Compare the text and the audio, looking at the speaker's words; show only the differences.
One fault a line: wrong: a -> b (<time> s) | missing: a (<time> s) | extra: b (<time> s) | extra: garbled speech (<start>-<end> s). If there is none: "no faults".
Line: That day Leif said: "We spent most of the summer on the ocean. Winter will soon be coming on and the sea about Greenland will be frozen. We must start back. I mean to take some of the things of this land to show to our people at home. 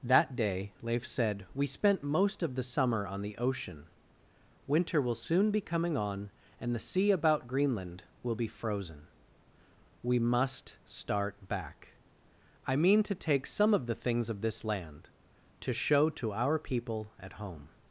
no faults